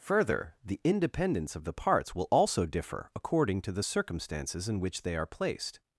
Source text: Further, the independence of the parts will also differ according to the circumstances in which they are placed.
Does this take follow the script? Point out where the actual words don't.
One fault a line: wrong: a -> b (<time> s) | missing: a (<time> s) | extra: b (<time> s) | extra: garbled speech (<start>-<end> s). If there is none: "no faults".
no faults